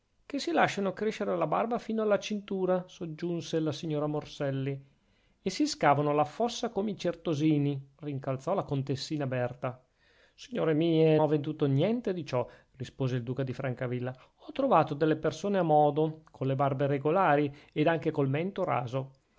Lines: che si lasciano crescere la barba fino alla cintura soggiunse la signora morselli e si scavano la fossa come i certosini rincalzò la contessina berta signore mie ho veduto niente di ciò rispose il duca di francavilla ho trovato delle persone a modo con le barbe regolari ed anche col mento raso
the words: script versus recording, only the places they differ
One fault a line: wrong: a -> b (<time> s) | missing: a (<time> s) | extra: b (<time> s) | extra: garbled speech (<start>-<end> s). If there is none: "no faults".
no faults